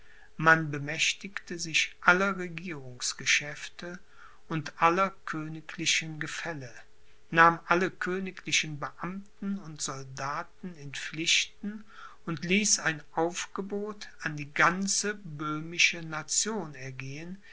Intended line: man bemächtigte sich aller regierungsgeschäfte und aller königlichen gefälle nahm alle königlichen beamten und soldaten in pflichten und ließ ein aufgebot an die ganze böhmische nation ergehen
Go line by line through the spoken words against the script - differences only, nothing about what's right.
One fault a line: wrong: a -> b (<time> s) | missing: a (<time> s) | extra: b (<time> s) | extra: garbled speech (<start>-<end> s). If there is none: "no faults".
no faults